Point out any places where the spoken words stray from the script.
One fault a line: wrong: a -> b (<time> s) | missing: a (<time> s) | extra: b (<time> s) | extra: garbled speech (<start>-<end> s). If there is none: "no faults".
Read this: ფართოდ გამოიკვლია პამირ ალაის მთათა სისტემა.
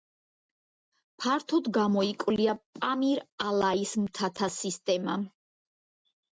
no faults